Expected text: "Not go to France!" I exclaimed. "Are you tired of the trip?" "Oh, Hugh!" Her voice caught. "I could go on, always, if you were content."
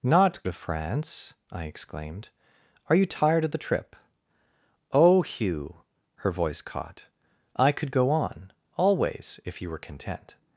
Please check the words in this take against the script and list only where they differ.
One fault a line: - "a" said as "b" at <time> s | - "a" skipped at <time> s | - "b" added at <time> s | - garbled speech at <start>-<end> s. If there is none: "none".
- "go" skipped at 0.4 s